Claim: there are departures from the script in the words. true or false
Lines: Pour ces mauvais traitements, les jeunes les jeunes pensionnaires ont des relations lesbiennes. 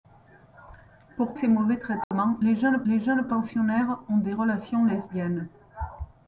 false